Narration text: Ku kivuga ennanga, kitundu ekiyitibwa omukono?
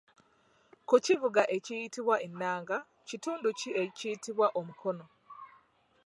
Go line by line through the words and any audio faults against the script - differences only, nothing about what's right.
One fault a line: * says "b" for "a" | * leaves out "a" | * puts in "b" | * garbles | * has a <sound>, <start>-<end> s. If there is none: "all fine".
* puts in "ekiyitibwa"
* puts in "ki"